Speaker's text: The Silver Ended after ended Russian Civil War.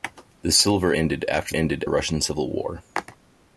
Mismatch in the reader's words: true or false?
false